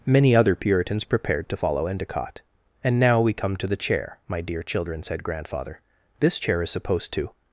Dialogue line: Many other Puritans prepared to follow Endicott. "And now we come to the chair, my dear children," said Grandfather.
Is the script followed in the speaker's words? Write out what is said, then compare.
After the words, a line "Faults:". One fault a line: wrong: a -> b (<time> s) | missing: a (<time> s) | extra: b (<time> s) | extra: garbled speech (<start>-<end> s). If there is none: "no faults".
Many other Puritans prepared to follow Endicott. "And now we come to the chair, my dear children," said Grandfather. "This chair is supposed to
Faults:
extra: This chair is supposed to (6.2 s)